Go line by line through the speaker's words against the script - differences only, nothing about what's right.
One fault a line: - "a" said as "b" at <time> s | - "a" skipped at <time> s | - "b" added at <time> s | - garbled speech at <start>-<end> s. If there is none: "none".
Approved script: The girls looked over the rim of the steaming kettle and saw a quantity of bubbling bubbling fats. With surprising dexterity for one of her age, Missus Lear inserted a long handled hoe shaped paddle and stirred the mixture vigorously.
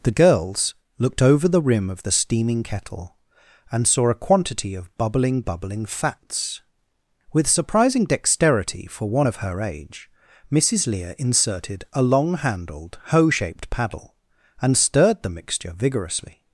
none